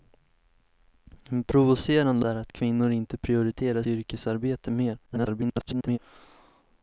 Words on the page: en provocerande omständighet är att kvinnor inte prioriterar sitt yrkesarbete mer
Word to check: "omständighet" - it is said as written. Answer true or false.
false